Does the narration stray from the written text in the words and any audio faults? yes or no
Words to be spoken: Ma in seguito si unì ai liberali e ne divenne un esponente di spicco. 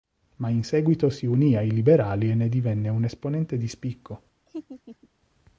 yes